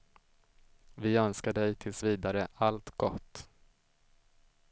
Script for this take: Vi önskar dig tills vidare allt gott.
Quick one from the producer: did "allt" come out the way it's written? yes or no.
yes